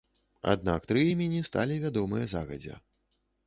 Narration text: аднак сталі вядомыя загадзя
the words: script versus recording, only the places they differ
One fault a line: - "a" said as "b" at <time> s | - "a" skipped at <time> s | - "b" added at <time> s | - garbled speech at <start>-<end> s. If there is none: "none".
- "тры імені" added at 0.9 s